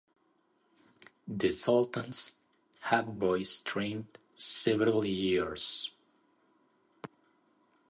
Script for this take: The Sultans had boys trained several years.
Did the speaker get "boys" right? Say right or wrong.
right